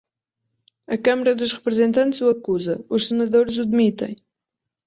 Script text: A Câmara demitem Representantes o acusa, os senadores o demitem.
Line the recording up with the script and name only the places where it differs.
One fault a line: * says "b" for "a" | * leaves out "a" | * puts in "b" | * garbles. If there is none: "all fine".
* says "dos" for "demitem"